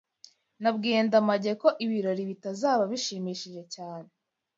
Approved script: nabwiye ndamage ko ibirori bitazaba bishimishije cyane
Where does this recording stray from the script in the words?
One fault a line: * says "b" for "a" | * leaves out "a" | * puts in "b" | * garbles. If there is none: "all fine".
all fine